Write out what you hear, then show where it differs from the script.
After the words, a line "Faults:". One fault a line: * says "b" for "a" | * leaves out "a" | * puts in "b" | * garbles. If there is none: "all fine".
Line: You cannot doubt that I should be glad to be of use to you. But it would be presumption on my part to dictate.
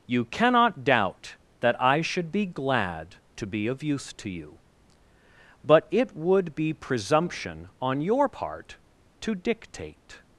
You cannot doubt that I should be glad to be of use to you. But it would be presumption on your part to dictate.
Faults:
* says "your" for "my"